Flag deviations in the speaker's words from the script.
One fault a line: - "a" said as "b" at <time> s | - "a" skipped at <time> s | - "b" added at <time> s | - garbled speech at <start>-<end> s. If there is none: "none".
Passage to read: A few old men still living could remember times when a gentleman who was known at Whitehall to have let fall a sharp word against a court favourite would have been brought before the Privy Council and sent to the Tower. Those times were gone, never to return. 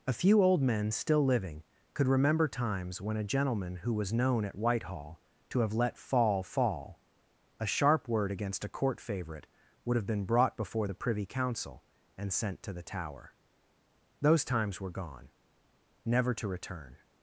- "fall" added at 6.4 s